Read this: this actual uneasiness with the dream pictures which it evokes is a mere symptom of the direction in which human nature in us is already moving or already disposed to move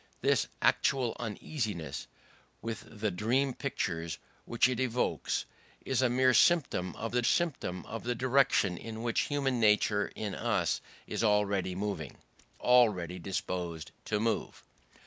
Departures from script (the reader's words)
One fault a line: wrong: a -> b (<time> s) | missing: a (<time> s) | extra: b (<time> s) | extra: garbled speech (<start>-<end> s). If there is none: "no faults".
extra: symptom of the (7.2 s)
missing: or (12.2 s)